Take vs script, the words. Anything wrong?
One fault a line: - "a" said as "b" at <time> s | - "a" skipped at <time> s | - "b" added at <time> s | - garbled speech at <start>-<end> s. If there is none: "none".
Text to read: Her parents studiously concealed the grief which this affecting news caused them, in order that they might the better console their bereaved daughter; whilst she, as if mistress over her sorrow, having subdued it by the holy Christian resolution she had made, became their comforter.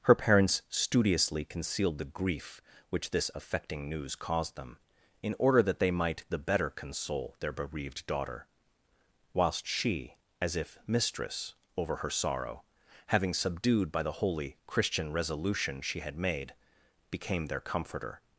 - "it" skipped at 13.9 s